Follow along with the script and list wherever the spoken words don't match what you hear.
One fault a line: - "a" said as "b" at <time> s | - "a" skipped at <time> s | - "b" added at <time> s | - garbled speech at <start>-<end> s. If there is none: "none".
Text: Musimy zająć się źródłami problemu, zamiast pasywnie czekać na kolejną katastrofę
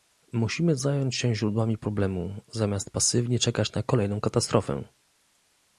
none